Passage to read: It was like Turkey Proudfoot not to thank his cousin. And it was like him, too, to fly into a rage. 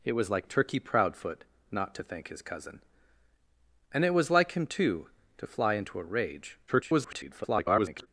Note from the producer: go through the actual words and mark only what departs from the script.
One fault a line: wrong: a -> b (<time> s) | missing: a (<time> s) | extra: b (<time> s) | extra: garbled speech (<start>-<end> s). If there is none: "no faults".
extra: garbled speech (6.7-8.1 s)